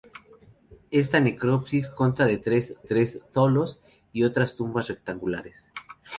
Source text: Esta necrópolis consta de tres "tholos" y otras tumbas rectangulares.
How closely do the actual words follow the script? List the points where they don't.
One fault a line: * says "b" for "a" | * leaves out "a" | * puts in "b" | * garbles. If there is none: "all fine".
* puts in "tres"